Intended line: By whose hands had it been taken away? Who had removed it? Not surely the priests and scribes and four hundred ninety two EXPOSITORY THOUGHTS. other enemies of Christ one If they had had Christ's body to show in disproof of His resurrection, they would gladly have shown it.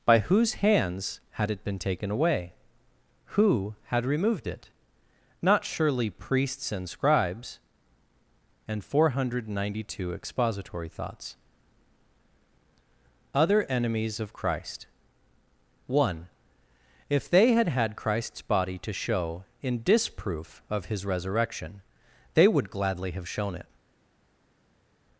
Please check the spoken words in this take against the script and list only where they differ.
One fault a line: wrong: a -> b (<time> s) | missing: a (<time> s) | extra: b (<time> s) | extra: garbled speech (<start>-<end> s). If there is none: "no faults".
missing: the (6.1 s)